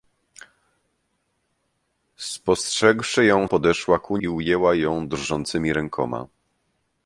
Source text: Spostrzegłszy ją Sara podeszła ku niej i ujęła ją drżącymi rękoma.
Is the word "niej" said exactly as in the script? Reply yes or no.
no